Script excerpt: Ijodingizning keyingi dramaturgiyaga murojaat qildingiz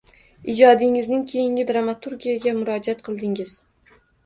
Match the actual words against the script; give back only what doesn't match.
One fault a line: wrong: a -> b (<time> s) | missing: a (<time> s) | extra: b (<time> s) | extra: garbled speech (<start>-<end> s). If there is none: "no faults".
no faults